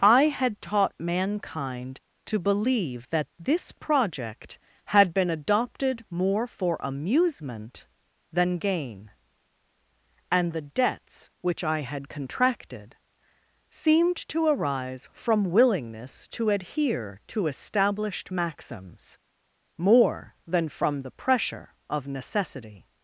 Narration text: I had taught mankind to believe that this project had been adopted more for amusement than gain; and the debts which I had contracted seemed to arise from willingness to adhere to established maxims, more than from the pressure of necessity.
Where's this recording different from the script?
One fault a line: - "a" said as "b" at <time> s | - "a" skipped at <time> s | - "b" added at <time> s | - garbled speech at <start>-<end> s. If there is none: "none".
none